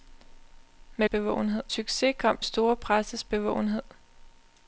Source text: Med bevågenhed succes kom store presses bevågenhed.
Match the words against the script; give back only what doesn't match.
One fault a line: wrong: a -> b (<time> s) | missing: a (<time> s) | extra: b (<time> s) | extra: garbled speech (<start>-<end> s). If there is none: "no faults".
no faults